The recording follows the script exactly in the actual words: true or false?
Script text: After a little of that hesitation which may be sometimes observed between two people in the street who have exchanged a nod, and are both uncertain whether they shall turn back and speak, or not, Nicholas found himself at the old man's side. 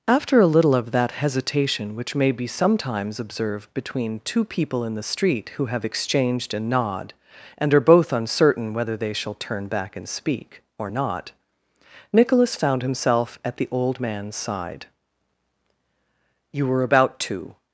false